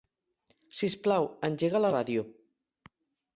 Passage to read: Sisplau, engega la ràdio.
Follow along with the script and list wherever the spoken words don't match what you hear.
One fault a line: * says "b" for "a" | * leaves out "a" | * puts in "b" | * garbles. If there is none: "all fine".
all fine